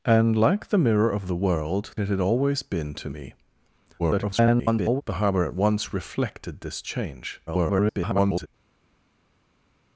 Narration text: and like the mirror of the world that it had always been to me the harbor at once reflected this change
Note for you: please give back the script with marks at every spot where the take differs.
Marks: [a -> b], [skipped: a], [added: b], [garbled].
and like the mirror of the world [skipped: that] it had always been to me [garbled] the harbor at once reflected this change [garbled]